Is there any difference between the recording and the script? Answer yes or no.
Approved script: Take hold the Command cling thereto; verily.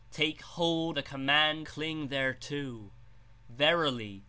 no